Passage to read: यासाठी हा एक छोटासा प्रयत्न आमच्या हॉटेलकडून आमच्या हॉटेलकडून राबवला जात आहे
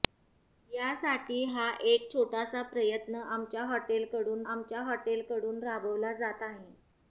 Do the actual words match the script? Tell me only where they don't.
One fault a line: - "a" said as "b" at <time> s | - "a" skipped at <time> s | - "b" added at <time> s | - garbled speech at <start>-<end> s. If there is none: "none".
none